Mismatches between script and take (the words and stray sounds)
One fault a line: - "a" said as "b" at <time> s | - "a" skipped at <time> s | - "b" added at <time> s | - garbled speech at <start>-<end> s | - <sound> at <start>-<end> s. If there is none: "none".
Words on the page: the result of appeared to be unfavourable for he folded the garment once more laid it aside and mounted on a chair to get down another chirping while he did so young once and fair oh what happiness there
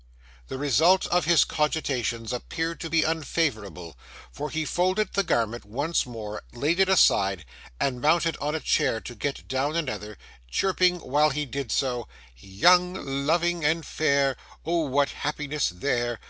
- "his cogitations" added at 1.2 s
- "once" said as "loving" at 13.2 s